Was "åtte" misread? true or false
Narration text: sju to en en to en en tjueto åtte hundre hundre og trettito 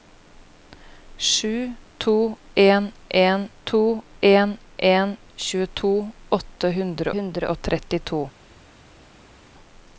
false